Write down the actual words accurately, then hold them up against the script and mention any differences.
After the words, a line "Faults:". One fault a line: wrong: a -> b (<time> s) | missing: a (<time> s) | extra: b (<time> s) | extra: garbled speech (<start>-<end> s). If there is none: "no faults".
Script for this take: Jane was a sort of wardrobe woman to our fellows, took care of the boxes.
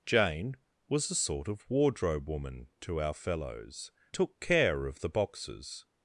Jane was a sort of wardrobe woman to our fellows, took care of the boxes.
Faults:
no faults